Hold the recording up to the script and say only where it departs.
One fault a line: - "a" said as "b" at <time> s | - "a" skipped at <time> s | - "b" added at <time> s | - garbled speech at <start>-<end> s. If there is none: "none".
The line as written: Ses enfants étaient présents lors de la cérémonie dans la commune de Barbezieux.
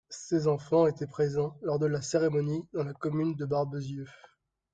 none